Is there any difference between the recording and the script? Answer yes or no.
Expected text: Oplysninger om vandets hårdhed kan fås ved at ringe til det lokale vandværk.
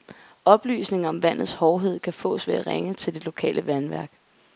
no